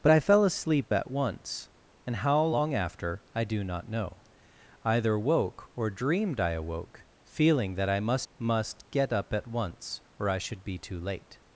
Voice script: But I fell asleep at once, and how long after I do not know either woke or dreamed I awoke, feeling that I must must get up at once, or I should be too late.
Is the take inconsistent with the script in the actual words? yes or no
no